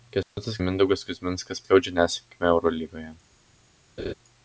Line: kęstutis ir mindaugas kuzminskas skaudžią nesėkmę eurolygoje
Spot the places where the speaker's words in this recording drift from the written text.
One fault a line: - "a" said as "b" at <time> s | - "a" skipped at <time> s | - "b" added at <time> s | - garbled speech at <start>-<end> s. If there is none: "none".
none